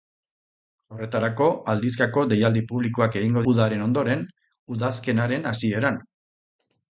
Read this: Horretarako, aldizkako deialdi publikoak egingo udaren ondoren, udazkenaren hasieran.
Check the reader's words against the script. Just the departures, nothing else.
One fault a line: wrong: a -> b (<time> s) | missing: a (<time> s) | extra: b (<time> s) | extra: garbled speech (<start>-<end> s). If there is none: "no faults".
no faults